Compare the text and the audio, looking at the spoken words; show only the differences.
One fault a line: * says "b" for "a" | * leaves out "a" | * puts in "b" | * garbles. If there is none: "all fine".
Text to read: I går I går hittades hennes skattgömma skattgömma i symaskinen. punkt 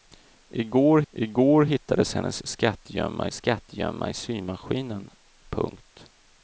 all fine